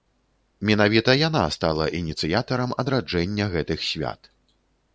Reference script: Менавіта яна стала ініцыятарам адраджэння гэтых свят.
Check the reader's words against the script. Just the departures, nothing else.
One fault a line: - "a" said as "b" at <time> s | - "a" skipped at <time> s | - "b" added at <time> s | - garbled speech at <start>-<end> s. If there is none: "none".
none